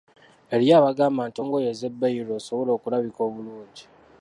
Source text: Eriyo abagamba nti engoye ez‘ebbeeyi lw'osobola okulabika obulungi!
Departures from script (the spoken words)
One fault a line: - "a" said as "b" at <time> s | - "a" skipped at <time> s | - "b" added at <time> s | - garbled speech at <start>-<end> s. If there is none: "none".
none